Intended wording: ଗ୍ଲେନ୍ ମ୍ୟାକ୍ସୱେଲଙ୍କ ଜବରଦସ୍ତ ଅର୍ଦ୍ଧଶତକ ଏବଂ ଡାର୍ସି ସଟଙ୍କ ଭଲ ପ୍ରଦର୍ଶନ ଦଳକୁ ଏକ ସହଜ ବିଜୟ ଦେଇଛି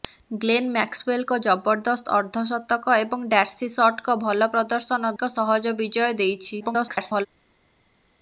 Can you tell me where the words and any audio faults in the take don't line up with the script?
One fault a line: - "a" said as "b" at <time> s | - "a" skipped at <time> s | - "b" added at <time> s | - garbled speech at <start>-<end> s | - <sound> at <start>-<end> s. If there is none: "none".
- "ଦଳକୁ" skipped at 5.1 s
- garbled speech at 6.6-7.3 s